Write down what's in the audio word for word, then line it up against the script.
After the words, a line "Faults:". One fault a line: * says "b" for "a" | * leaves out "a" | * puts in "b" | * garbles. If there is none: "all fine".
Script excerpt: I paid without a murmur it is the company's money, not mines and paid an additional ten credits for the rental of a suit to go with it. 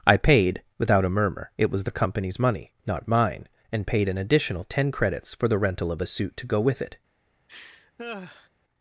I paid without a murmur it was the company's money, not mine and paid an additional ten credits for the rental of a suit to go with it.
Faults:
* says "was" for "is"
* says "mine" for "mines"